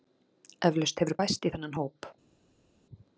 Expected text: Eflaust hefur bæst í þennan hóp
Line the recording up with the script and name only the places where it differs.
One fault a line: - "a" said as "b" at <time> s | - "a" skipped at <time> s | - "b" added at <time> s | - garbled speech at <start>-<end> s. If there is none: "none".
none